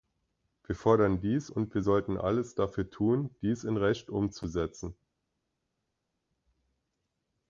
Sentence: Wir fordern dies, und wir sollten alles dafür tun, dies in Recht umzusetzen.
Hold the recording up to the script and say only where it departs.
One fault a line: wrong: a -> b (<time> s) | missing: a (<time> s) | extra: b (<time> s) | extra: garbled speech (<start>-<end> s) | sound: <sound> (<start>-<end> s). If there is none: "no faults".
no faults